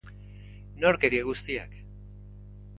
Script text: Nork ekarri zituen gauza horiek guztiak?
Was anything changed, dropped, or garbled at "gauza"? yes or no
yes